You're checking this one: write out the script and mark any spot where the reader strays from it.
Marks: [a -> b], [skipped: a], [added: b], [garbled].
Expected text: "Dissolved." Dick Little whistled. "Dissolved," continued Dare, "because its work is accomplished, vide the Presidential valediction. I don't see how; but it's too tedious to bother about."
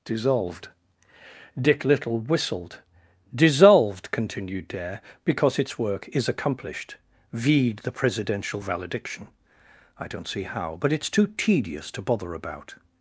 "Dissolved." Dick Little whistled. "Dissolved," continued Dare, "because its work is accomplished, vide the Presidential valediction. I don't see how; but it's too tedious to bother about."